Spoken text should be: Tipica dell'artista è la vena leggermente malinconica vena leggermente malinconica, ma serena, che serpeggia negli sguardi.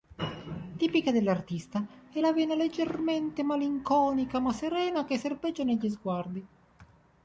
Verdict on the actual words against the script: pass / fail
fail